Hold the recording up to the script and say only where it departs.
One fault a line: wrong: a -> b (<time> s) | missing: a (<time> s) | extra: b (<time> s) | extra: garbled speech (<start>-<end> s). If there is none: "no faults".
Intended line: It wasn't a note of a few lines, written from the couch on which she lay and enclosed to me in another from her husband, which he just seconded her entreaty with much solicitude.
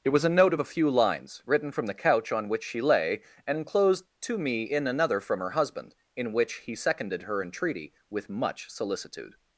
wrong: wasn't -> was (0.1 s)
extra: in (6.1 s)
missing: just (6.7 s)